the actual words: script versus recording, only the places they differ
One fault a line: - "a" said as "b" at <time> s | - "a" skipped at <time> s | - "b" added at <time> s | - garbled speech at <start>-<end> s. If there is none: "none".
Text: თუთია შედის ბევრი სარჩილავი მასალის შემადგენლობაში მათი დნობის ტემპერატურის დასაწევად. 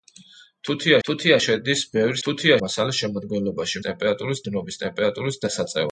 - "თუთია" added at 1.1 s
- "სარჩილავი" said as "თუთია" at 2.3 s
- "მათი" said as "ტემპერატურის" at 3.9 s